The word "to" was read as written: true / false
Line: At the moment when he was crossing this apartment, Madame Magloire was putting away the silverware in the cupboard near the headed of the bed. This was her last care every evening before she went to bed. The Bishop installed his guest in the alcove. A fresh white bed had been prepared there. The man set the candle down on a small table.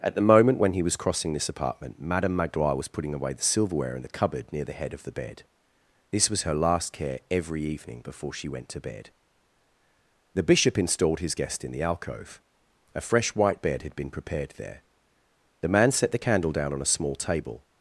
true